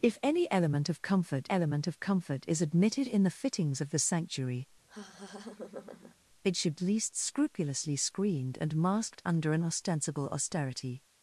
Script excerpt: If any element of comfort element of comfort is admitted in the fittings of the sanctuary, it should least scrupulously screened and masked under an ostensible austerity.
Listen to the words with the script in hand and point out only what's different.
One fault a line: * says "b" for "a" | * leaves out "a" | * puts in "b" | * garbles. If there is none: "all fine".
all fine